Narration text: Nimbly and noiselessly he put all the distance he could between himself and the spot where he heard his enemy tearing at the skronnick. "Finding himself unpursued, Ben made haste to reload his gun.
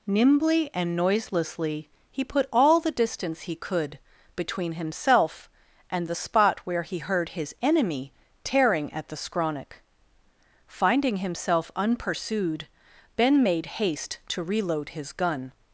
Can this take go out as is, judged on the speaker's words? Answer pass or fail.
pass